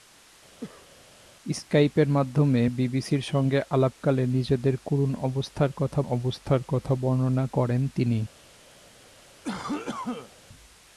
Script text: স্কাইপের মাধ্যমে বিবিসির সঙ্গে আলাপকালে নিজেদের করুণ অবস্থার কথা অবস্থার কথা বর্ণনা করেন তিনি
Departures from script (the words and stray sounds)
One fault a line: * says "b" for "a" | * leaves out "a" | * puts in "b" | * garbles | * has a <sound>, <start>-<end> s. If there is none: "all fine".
* has a cough, 0.6-0.9 s
* has a cough, 9.4-10.4 s